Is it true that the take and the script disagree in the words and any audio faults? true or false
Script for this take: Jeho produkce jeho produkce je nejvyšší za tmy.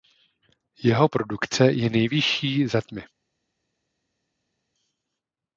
true